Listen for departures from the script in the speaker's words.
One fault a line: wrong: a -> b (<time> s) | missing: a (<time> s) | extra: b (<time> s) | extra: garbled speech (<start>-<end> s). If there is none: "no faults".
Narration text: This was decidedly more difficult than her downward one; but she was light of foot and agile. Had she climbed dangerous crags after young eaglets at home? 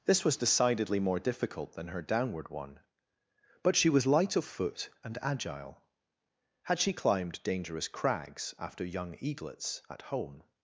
no faults